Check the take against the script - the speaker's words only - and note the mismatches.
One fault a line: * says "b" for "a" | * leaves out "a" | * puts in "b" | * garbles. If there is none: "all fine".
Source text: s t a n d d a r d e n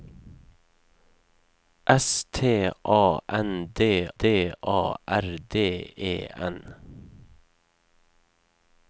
all fine